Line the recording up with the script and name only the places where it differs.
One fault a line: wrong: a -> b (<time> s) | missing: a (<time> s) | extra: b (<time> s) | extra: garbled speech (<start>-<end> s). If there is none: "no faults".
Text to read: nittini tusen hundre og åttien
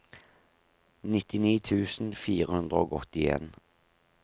extra: fire (2.2 s)